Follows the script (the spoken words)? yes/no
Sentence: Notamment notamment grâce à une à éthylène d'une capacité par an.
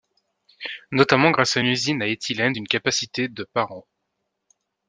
no